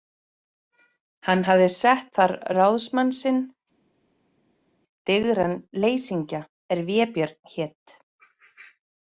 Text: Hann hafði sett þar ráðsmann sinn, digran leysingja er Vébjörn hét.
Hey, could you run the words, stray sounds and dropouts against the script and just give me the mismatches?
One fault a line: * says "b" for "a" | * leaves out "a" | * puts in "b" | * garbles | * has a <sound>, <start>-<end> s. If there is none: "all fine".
all fine